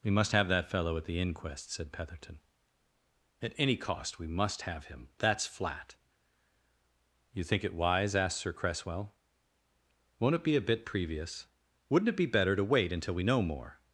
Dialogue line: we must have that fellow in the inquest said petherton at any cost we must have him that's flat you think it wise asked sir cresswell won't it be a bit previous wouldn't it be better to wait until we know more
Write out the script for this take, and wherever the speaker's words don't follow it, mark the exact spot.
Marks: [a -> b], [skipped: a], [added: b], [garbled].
we must have that fellow [in -> at] the inquest said petherton at any cost we must have him that's flat you think it wise asked sir cresswell won't it be a bit previous wouldn't it be better to wait until we know more